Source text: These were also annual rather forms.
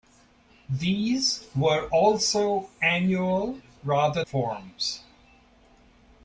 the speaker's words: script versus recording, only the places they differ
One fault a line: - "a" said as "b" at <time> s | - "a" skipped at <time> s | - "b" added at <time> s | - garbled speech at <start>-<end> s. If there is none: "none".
none